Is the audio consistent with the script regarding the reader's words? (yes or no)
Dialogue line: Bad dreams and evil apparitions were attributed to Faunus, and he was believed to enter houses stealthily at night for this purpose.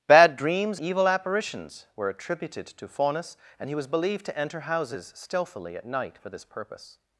no